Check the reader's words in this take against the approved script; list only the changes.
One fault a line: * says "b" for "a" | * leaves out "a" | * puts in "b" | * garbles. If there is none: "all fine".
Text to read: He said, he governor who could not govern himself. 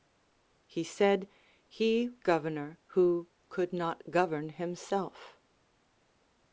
all fine